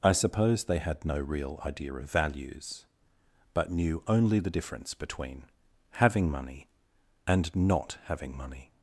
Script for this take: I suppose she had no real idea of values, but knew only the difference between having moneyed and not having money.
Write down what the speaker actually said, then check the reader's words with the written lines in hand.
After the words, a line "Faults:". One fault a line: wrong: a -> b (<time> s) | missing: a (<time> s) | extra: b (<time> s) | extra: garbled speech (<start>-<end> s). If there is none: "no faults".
I suppose they had no real idea of values, but knew only the difference between having money and not having money.
Faults:
wrong: she -> they (0.6 s)
wrong: moneyed -> money (6.3 s)